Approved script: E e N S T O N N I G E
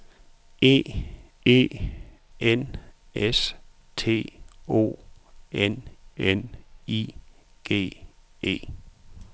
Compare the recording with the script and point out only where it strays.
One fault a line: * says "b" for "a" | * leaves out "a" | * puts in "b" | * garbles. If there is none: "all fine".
all fine